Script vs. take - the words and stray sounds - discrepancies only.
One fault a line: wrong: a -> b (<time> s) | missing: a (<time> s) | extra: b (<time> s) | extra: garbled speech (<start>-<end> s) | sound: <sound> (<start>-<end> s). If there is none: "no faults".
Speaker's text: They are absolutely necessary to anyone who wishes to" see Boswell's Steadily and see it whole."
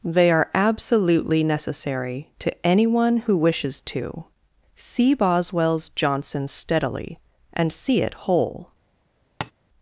extra: Johnson (5.9 s)
sound: tap (9.4-9.5 s)